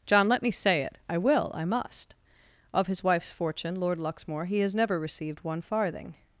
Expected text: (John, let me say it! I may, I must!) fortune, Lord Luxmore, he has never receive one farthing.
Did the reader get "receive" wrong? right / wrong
wrong